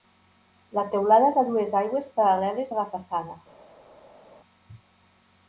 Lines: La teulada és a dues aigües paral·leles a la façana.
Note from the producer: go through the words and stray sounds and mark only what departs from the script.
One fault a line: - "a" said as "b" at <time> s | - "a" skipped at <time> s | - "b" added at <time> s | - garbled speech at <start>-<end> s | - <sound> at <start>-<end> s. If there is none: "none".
none